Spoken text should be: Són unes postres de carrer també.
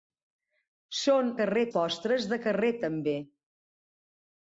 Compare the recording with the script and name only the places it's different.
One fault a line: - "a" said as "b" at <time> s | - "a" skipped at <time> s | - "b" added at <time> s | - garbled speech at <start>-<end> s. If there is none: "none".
- "unes" said as "carrer" at 1.4 s